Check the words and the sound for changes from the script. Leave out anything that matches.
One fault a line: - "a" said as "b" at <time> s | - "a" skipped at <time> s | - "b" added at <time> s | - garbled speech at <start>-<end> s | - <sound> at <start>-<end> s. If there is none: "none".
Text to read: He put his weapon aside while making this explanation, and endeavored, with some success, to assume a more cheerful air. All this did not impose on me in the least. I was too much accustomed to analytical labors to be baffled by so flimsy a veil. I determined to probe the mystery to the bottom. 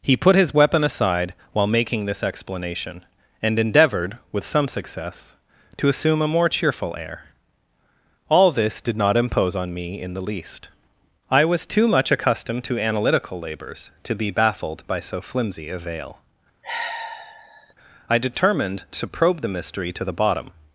- sigh at 16.6-17.7 s